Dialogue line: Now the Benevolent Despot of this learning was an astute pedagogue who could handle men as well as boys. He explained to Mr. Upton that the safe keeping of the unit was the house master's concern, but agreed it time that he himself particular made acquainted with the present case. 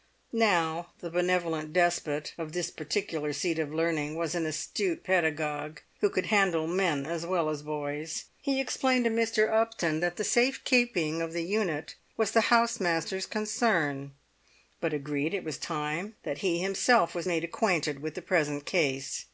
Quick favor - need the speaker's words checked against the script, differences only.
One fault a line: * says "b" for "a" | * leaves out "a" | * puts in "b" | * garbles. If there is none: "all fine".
* puts in "particular seat of"
* puts in "was"
* says "was" for "particular"